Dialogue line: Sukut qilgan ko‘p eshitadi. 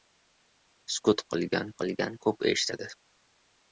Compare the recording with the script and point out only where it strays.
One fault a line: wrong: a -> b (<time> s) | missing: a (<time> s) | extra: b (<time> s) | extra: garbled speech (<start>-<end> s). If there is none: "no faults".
extra: qilgan (1.8 s)